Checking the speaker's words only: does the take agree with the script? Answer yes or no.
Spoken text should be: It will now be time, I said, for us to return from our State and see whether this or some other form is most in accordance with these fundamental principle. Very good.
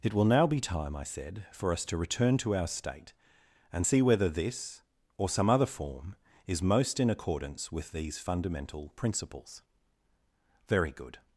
no